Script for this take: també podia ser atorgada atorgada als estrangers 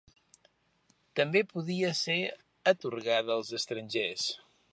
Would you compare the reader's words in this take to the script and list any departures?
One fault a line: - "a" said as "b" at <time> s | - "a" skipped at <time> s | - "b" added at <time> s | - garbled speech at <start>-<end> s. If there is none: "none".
- "atorgada" skipped at 3.4 s